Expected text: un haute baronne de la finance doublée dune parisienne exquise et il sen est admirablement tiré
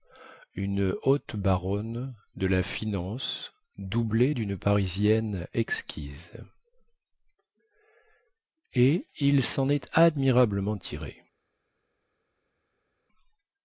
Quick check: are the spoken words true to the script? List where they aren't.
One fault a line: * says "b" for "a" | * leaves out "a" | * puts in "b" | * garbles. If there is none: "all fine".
* says "une" for "un"